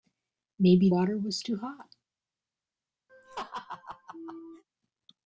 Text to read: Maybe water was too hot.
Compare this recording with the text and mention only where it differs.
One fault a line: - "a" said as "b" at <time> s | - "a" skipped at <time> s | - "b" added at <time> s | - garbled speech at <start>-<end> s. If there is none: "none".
none